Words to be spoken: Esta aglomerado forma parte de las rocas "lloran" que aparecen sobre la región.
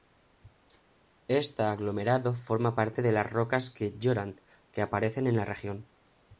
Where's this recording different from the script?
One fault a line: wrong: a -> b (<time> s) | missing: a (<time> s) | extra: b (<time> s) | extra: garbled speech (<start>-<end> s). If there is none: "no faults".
extra: que (3.7 s)
wrong: sobre -> en (5.3 s)